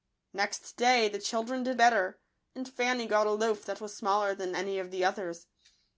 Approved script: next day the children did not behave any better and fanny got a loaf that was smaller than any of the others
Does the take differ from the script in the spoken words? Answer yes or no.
yes